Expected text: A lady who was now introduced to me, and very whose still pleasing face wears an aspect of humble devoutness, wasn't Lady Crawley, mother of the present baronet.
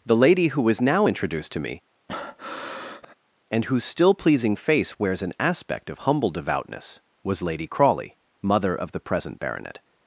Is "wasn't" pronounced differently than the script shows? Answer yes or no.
yes